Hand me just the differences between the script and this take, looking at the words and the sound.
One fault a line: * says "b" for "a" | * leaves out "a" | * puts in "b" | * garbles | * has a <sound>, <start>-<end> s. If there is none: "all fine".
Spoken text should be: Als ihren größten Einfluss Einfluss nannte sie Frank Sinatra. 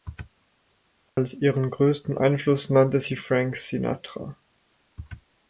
* has a dropout, 1.1-1.2 s
* leaves out "Einfluss"